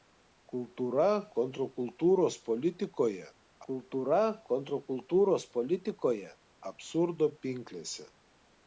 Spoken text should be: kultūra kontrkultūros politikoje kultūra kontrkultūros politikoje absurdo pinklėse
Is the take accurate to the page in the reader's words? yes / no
yes